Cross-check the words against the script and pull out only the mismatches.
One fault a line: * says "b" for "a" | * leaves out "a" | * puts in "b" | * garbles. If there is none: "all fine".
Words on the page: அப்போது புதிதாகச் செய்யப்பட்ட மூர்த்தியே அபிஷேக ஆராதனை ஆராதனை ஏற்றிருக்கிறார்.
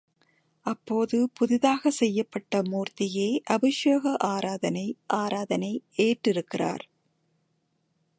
all fine